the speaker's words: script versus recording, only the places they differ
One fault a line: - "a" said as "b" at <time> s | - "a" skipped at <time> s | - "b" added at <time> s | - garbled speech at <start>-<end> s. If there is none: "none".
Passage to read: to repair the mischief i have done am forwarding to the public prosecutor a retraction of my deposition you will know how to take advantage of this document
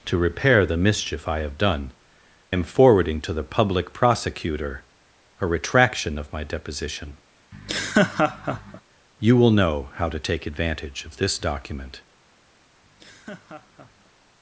none